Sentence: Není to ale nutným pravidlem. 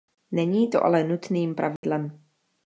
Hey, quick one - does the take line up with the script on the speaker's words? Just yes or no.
yes